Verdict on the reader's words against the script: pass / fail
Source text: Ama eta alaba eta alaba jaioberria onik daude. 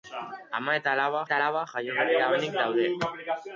pass